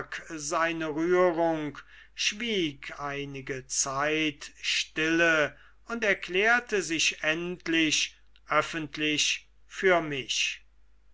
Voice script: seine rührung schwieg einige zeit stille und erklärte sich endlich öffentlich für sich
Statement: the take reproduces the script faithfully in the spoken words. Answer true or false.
false